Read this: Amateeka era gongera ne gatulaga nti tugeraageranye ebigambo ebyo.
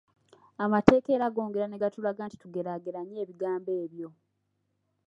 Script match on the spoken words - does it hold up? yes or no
yes